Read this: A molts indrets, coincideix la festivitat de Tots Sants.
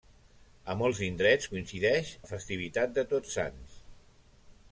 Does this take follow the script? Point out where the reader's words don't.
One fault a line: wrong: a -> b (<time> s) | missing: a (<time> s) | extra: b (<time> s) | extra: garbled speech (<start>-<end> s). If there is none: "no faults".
no faults